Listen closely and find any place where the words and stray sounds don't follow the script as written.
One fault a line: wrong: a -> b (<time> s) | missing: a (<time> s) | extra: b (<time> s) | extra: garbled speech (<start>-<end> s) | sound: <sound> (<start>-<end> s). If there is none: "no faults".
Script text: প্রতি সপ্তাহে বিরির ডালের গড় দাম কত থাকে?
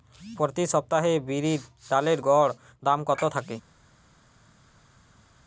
no faults